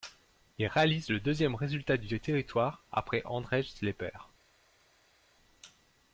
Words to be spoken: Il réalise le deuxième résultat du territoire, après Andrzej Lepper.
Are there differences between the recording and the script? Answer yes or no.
no